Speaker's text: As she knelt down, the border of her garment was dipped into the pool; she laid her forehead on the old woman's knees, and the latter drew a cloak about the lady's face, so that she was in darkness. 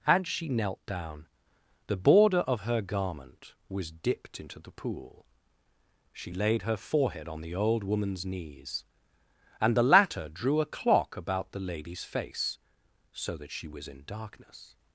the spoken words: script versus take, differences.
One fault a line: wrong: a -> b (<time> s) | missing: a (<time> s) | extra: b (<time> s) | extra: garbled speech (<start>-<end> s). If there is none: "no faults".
wrong: cloak -> clock (10.7 s)